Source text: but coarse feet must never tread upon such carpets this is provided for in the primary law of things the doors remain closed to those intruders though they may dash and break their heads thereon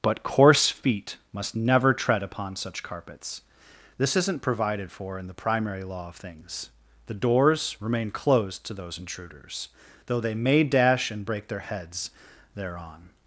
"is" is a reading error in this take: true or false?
true